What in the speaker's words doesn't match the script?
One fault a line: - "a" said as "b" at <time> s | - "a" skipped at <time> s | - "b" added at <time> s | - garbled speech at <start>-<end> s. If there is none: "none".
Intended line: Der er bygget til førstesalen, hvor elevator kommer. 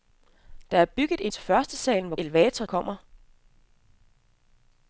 none